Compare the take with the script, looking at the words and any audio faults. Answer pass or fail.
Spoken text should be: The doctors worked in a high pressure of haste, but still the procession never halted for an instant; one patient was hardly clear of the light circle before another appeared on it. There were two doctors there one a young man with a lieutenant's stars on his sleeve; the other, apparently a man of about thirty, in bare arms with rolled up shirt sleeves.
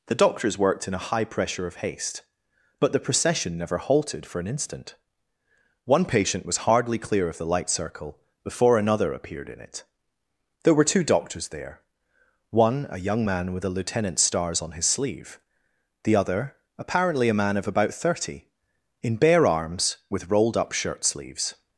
fail